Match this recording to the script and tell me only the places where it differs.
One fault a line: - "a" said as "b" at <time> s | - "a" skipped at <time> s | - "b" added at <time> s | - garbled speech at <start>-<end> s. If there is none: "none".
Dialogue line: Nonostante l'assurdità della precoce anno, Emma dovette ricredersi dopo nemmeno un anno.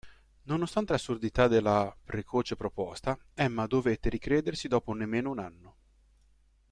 - "anno" said as "proposta" at 2.6 s